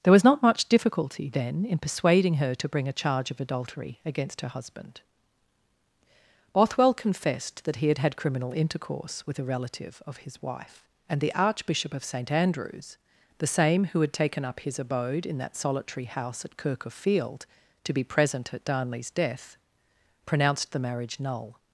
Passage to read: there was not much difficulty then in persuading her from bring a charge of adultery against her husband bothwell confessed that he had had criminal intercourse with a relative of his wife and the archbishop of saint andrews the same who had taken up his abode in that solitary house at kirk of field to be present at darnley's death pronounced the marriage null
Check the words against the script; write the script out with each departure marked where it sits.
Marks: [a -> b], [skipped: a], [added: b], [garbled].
there was not much difficulty then in persuading her [from -> to] bring a charge of adultery against her husband bothwell confessed that he had had criminal intercourse with a relative of his wife and the archbishop of saint andrews the same who had taken up his abode in that solitary house at kirk of field to be present at darnley's death pronounced the marriage null